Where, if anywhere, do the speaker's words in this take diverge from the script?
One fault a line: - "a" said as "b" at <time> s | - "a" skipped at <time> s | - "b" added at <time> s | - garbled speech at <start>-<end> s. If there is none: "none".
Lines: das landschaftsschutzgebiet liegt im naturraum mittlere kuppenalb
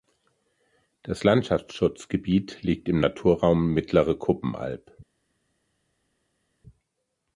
none